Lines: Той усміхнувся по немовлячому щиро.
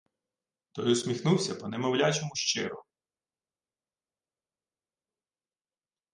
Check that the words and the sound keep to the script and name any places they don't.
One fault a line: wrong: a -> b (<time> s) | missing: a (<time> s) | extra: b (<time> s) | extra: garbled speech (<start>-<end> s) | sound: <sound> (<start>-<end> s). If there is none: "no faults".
no faults